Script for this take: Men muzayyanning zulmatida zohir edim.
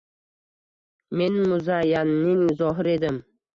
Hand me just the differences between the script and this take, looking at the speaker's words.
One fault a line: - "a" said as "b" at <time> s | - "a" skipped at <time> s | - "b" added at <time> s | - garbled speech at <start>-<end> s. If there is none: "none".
- "zulmatida" skipped at 2.4 s